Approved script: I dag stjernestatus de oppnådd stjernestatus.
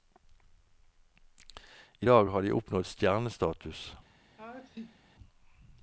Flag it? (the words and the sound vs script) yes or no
yes